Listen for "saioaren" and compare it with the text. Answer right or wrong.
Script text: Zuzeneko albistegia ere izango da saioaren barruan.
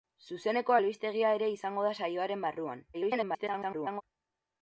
right